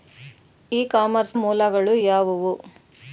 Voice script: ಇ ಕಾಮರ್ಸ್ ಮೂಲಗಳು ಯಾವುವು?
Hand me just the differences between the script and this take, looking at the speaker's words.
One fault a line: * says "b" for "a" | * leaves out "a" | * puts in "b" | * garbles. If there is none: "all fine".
all fine